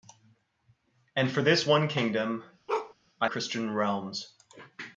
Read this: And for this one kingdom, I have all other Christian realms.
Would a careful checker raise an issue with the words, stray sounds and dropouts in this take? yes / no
yes